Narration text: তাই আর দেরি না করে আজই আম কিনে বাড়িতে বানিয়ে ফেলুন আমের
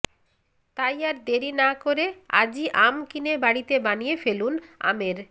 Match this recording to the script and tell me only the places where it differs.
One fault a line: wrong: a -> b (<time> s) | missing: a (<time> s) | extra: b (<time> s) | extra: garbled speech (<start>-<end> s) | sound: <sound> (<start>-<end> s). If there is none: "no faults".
no faults